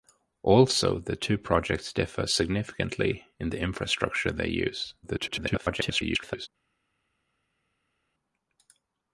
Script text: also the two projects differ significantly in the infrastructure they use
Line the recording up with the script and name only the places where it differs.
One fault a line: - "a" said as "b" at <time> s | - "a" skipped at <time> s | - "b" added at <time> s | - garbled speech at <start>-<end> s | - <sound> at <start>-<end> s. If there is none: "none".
- garbled speech at 5.0-6.5 s